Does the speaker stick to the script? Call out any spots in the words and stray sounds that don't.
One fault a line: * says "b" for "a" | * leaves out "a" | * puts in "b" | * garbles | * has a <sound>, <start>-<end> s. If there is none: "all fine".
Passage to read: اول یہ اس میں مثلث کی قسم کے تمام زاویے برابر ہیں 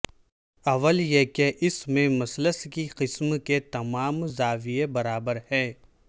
* puts in "کہ"